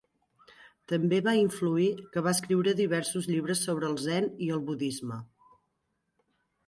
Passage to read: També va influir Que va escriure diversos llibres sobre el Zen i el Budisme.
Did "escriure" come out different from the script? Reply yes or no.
no